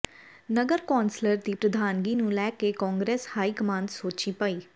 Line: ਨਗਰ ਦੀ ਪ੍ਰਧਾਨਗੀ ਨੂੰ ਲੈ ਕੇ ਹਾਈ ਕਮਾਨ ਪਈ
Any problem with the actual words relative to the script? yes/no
yes